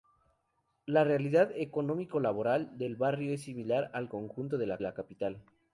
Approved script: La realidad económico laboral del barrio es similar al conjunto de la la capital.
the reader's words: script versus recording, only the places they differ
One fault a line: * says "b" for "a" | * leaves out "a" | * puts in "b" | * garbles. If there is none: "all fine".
all fine